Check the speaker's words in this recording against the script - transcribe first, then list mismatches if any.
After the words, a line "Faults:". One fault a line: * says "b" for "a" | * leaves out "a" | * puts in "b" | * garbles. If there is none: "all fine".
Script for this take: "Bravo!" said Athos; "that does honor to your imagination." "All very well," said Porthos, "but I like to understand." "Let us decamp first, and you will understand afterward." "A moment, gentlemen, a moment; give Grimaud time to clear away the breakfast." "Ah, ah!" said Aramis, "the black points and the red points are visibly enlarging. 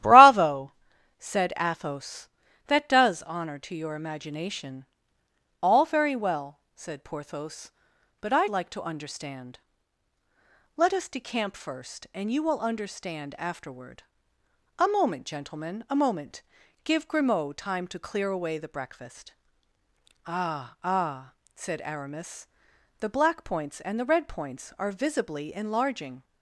"Bravo!" said Athos; "that does honor to your imagination." "All very well," said Porthos, "but I like to understand." "Let us decamp first, and you will understand afterward." "A moment, gentlemen, a moment; give Grimaud time to clear away the breakfast." "Ah, ah!" said Aramis, "the black points and the red points are visibly enlarging.
Faults:
all fine